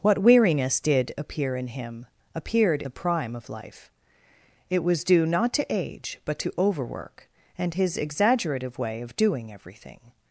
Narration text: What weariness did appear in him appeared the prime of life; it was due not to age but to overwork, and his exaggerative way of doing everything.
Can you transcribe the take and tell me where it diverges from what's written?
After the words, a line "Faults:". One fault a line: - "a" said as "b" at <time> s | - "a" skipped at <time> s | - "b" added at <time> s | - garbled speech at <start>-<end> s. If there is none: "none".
What weariness did appear in him appeared the prime of life; it was due not to age but to overwork, and his exaggerative way of doing everything.
Faults:
none